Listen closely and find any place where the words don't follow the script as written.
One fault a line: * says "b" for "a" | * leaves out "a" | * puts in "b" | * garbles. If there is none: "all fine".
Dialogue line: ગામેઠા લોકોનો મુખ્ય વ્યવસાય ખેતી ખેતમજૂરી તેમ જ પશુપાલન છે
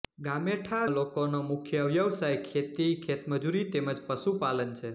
all fine